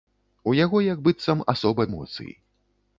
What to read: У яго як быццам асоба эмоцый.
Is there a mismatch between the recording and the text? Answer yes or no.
no